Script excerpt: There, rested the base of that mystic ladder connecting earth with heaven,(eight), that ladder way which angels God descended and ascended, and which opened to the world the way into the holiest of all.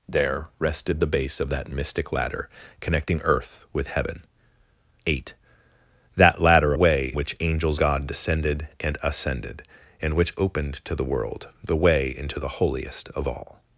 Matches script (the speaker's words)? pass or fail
pass